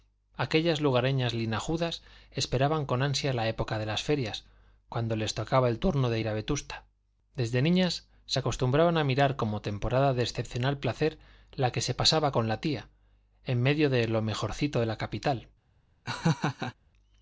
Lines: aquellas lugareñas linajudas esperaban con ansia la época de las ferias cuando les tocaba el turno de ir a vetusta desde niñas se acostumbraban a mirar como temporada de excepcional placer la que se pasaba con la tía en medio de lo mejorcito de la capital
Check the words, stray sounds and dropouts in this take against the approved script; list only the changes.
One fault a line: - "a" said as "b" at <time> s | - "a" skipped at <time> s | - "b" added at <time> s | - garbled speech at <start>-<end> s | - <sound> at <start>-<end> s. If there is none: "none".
- laugh at 16.0-16.7 s